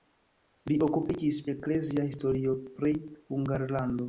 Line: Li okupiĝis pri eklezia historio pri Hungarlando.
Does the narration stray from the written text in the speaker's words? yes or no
yes